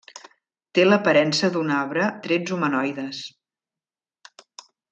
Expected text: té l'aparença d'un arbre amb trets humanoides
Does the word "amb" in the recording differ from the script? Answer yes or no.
yes